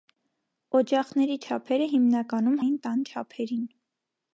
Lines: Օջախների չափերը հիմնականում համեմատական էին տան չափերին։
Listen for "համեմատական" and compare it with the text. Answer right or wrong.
wrong